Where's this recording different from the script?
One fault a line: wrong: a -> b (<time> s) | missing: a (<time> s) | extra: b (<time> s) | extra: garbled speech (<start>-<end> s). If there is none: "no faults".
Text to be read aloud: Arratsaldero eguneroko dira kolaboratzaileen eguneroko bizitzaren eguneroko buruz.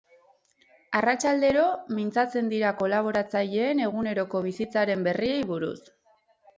wrong: eguneroko -> mintzatzen (2.0 s)
wrong: eguneroko -> berriei (5.1 s)